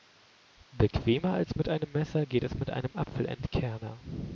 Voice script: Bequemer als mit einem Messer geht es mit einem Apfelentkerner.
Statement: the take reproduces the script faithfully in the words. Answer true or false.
true